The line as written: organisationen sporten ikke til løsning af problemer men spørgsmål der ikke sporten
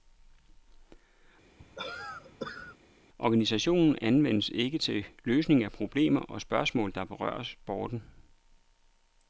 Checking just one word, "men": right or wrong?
wrong